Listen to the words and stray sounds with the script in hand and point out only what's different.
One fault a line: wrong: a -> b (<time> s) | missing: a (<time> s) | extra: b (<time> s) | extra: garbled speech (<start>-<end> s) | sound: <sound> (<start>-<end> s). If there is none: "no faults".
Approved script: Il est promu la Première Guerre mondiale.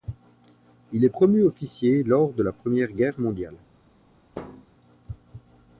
extra: officier lors de (1.4 s)
sound: thud (4.3-4.7 s)